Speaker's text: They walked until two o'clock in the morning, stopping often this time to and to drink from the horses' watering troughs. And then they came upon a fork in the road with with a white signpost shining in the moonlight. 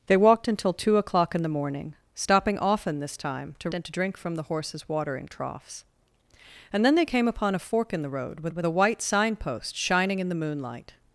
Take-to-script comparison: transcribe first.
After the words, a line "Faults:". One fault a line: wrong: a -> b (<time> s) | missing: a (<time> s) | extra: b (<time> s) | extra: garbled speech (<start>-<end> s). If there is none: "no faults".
They walked until two o'clock in the morning, stopping often this time to and to drink from the horses' watering troughs. And then they came upon a fork in the road with with a white signpost shining in the moonlight.
Faults:
no faults